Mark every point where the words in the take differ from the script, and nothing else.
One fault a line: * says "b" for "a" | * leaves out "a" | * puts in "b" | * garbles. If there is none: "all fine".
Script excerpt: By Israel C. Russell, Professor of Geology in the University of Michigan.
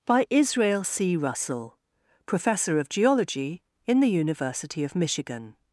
all fine